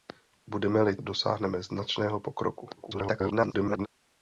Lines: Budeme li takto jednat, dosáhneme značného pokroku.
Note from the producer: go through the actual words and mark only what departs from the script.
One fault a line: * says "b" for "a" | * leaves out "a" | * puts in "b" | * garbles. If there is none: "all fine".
* leaves out "takto jednat"
* garbles